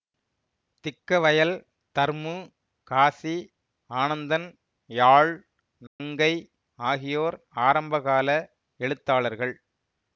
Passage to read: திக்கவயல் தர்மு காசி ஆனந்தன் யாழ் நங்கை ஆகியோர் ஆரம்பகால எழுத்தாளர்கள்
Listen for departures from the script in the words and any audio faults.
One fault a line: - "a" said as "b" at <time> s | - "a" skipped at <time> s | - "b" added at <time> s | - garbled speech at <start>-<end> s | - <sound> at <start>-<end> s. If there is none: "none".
- dropout at 5.9-6.0 s